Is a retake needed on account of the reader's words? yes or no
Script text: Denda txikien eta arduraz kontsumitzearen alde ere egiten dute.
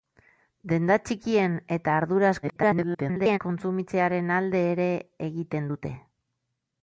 yes